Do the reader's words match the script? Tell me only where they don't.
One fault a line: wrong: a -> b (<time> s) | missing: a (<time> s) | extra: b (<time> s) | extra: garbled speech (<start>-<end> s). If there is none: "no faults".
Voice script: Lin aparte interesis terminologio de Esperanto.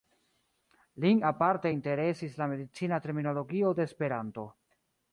extra: la medicina (2.4 s)